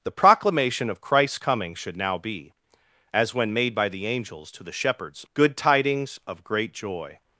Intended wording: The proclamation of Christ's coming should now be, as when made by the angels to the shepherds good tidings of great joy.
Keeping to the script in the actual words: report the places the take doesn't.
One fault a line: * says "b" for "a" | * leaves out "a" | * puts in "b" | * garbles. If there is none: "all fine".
all fine